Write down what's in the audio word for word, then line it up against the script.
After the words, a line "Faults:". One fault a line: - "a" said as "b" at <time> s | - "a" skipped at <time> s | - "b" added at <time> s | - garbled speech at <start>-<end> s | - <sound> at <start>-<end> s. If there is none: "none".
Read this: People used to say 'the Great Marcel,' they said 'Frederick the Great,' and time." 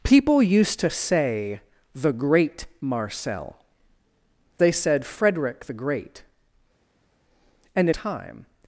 People used to say 'the Great Marcel,' they said 'Frederick the Great,' and time."
Faults:
none